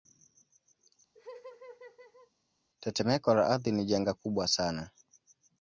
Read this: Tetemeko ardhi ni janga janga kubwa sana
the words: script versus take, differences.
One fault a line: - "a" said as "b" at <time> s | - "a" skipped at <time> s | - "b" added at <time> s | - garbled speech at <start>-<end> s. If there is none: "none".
- "la" added at 3.3 s
- "janga" skipped at 4.1 s